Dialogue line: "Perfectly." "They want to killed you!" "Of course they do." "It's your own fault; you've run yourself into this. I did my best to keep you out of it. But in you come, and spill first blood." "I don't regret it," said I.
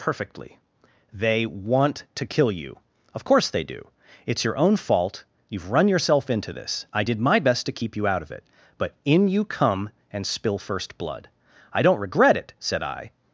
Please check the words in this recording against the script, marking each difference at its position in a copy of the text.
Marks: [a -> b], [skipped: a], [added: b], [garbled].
"Perfectly." "They want to [killed -> kill] you!" "Of course they do." "It's your own fault; you've run yourself into this. I did my best to keep you out of it. But in you come, and spill first blood." "I don't regret it," said I.